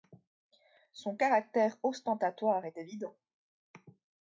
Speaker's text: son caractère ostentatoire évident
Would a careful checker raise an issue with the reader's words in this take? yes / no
yes